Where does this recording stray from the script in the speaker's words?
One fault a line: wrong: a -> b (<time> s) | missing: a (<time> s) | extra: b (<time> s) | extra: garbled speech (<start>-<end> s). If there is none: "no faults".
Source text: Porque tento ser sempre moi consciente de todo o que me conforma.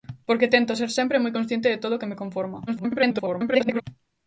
extra: garbled speech (2.7-3.8 s)